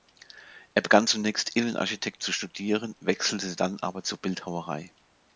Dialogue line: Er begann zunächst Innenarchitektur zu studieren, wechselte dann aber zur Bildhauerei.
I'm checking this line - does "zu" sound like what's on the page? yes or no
yes